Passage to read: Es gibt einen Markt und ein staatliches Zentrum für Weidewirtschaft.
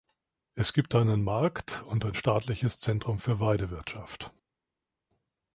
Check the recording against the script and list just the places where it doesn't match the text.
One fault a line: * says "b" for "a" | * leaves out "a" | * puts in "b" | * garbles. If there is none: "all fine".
all fine